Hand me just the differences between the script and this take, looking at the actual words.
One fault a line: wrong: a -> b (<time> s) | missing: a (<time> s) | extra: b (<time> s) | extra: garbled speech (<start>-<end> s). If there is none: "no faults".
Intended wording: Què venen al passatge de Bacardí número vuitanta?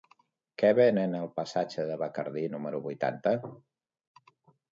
no faults